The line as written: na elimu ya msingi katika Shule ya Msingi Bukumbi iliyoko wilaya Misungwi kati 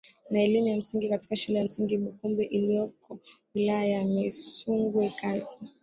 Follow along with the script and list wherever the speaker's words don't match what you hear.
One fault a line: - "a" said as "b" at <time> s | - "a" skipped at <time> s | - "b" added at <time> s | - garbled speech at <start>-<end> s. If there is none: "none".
- "ya" added at 3.9 s